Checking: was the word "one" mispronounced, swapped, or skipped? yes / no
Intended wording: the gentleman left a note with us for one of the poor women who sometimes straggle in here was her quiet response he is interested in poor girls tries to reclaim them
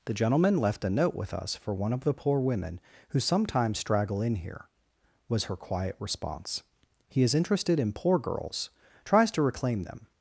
no